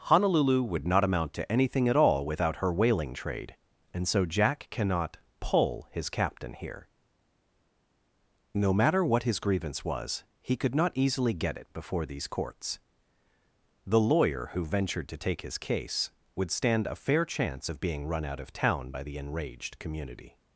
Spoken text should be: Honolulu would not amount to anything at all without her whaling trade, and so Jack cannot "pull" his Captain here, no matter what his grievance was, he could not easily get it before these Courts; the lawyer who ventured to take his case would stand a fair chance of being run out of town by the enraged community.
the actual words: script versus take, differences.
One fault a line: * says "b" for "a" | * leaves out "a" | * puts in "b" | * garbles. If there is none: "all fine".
all fine